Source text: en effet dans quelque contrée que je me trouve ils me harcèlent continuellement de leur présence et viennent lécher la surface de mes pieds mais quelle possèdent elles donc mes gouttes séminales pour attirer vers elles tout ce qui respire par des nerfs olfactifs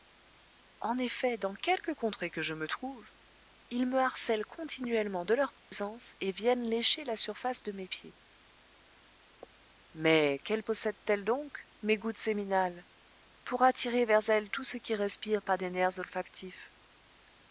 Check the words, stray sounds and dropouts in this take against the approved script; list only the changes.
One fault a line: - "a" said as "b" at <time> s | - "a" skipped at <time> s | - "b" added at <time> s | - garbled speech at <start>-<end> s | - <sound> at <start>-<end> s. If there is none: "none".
- dropout at 5.6-5.7 s